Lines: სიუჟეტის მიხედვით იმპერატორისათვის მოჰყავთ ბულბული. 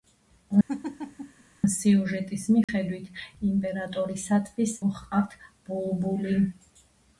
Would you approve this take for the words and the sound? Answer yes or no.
no